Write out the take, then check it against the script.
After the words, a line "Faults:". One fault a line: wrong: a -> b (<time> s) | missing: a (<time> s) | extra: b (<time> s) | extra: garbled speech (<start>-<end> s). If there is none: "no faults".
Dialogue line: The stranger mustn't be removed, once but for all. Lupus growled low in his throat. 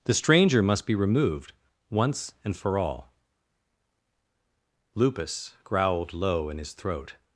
The stranger must be removed, once and for all. Lupus growled low in his throat.
Faults:
wrong: mustn't -> must (0.6 s)
wrong: but -> and (2.4 s)